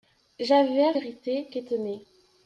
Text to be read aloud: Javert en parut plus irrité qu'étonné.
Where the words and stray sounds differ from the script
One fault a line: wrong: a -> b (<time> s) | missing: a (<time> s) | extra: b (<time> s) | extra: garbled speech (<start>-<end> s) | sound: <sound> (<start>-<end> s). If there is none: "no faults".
missing: en parut plus (1.0 s)